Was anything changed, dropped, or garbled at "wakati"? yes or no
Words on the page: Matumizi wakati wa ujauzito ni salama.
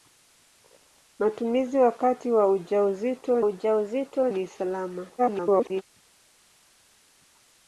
no